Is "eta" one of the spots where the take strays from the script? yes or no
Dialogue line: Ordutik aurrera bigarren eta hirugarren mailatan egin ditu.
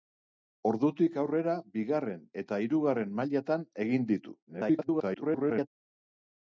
no